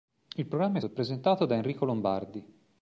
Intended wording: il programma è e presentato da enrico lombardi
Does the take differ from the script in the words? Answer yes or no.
no